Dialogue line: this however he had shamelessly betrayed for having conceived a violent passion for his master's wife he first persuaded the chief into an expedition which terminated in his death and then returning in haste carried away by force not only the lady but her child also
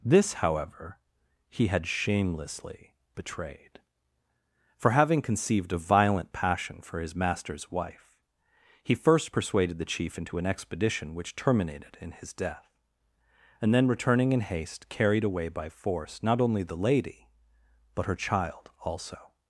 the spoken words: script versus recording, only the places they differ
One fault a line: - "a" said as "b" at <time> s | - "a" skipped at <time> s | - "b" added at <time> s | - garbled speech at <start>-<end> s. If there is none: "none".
none